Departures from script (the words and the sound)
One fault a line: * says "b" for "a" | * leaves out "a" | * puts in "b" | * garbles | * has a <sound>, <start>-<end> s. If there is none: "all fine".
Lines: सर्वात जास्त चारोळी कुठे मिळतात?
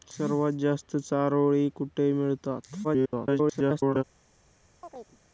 * garbles
* has a chirp, 4.8-5.2 s